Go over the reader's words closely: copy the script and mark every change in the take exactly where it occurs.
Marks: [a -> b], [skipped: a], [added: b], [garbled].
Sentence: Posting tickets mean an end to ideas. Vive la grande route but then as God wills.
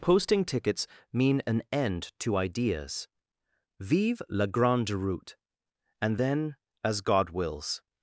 Posting tickets mean an end to ideas. Vive la grande route [but -> and] then as God wills.